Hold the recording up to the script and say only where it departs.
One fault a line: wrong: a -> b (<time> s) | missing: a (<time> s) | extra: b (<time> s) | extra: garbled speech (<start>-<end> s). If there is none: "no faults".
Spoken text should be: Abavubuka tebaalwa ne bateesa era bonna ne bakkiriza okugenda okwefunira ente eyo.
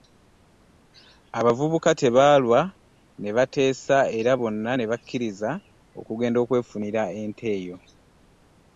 no faults